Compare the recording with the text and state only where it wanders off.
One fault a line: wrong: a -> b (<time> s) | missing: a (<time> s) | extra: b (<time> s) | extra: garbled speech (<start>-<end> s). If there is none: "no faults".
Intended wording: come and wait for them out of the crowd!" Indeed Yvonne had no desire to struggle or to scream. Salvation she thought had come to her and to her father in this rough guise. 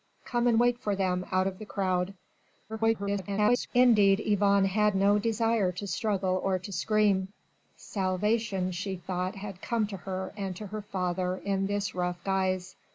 extra: garbled speech (2.7-3.7 s)